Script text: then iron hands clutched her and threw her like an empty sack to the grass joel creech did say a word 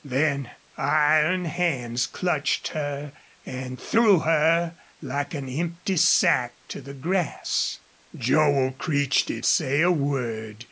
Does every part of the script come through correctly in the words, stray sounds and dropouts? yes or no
yes